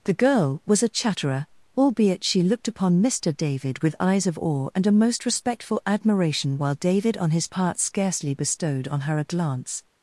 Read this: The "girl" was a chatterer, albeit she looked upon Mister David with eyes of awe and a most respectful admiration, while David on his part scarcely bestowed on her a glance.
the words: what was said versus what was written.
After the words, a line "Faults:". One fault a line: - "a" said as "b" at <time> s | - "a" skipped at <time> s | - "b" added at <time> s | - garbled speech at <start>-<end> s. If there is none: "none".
The "girl" was a chatterer, albeit she looked upon Mister David with eyes of awe and a most respectful admiration, while David on his part scarcely bestowed on her a glance.
Faults:
none